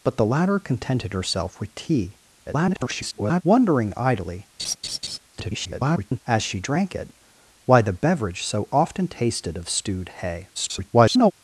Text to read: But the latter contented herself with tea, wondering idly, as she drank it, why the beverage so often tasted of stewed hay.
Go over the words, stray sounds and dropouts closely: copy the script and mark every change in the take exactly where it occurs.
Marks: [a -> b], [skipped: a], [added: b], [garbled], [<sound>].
But the latter contented herself with tea, [garbled] wondering idly, [laugh] [garbled] as she drank it, why the beverage so often tasted of stewed hay. [garbled]